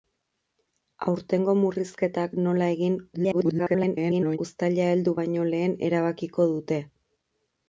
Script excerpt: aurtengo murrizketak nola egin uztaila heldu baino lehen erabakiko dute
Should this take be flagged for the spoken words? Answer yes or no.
yes